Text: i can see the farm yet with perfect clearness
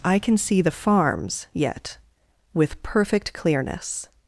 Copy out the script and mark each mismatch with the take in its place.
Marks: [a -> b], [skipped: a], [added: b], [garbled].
i can see the [farm -> farms] yet with perfect clearness